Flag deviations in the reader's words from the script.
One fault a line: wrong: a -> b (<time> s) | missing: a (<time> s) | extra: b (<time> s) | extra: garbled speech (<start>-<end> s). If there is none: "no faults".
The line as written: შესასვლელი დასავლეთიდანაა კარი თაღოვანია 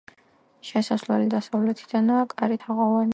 no faults